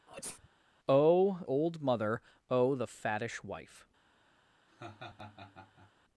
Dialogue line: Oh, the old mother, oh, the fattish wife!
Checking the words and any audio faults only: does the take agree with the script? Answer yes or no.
no